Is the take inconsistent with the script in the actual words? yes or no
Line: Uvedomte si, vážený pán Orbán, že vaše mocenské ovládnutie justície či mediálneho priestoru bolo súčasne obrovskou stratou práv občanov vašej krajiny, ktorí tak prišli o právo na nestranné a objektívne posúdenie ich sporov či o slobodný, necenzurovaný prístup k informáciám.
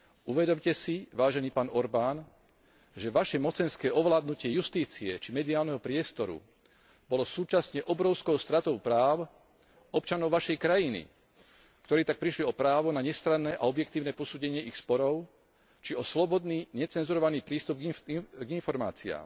no